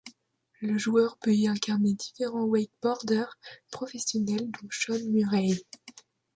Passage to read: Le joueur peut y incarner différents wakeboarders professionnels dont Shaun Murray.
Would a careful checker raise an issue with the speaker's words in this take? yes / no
no